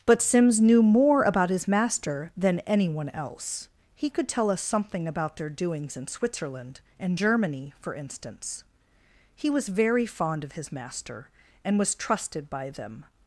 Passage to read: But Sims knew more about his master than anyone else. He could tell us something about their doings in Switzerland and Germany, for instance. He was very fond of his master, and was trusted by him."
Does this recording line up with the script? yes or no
no